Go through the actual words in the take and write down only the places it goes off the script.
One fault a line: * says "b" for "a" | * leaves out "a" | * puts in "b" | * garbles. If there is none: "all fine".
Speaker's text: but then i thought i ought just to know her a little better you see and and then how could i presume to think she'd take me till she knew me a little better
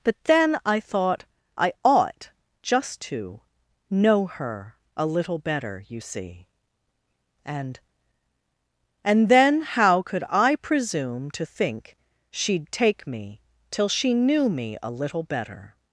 all fine